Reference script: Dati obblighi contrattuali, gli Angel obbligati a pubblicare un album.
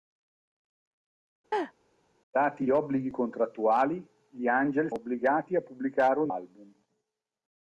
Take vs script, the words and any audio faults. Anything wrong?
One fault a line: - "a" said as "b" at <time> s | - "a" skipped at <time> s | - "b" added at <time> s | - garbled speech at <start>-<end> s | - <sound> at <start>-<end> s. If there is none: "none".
- laugh at 1.5-1.7 s